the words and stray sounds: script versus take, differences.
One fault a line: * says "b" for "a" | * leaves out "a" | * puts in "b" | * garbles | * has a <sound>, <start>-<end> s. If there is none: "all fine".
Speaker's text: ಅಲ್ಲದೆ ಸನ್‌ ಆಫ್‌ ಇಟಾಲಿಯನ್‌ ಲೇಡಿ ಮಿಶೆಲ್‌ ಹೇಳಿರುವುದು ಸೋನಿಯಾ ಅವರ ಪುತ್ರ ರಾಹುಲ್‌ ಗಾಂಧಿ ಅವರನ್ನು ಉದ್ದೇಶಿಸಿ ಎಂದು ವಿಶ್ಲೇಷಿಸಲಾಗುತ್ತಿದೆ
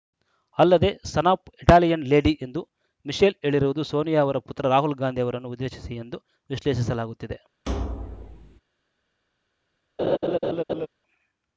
* puts in "ಎಂದು"
* has a thud, 7.7-8.6 s
* has a laugh, 10.0-10.9 s